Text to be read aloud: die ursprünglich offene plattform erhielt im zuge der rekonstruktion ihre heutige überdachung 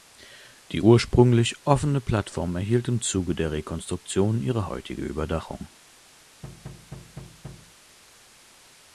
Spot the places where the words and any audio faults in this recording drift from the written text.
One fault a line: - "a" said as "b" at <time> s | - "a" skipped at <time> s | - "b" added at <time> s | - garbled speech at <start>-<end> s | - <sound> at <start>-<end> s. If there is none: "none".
- thud at 6.4-7.7 s